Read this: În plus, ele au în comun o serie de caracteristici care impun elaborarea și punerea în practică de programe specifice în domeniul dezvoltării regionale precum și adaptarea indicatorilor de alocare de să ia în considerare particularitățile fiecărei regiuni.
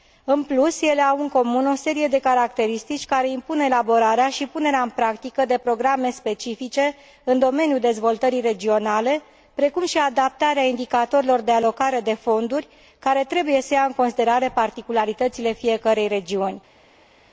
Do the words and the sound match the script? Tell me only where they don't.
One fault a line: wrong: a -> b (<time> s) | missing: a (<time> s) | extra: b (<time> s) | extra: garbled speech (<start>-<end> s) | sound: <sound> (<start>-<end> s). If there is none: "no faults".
extra: fonduri care trebuie (12.1 s)